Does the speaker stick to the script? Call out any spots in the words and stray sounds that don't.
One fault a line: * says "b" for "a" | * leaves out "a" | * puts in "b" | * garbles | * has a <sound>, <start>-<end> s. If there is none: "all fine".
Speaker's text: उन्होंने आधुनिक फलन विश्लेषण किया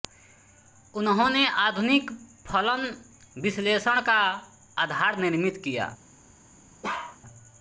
* puts in "का आधार निर्मित"
* has a bark, 6.8-7.2 s